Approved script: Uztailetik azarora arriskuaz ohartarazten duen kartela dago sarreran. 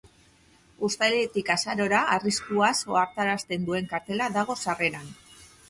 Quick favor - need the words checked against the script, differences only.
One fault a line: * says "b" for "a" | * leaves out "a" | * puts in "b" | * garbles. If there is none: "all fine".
all fine